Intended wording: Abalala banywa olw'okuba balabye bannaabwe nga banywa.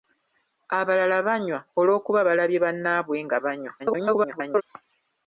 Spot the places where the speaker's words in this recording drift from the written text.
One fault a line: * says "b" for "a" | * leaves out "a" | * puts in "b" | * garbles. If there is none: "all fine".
* garbles